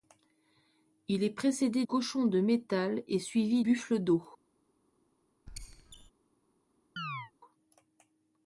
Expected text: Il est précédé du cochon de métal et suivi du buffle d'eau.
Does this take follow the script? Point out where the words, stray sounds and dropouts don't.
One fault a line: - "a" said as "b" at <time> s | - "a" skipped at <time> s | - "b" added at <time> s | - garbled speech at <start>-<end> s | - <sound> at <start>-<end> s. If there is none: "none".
- "du" skipped at 1.9 s
- "du" skipped at 3.7 s
- squeak at 5.5-6.1 s
- chirp at 7.0-7.3 s